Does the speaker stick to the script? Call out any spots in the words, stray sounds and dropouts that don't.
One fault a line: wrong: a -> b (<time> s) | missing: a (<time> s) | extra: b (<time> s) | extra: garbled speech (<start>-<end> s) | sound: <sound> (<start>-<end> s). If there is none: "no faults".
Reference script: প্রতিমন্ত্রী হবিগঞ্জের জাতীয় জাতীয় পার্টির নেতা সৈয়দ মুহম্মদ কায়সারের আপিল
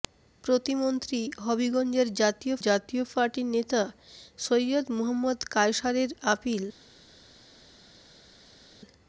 no faults